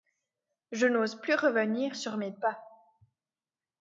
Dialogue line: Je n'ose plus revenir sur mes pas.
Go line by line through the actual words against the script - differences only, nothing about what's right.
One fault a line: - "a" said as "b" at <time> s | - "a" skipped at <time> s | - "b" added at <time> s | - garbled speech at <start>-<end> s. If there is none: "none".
none